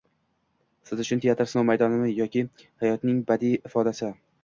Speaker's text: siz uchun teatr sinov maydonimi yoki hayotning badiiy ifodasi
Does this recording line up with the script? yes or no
yes